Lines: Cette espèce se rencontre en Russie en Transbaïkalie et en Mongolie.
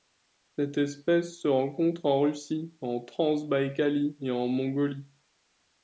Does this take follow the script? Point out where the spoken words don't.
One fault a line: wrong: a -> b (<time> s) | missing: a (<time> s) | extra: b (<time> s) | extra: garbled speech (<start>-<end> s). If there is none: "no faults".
no faults